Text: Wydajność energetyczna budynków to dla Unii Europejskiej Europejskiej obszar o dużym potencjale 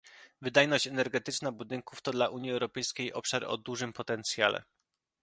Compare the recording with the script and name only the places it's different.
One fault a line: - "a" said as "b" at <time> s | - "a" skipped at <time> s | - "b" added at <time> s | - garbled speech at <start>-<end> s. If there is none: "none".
- "Europejskiej" skipped at 3.1 s